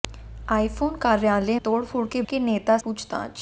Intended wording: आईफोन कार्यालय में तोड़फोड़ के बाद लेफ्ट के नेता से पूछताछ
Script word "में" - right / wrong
wrong